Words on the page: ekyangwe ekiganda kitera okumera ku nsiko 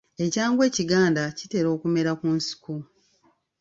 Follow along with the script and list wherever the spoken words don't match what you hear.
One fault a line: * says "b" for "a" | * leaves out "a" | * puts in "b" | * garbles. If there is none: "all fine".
all fine